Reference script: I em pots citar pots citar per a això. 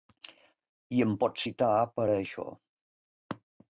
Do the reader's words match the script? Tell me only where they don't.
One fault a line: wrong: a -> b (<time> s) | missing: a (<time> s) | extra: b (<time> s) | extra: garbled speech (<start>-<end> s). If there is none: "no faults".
missing: pots citar (1.7 s)